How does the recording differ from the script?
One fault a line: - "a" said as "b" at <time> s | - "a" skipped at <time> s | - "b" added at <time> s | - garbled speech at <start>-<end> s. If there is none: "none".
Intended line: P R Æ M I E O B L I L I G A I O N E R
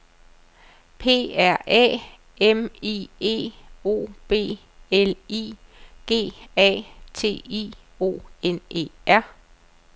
- "L I" skipped at 5.5 s
- "T" added at 7.1 s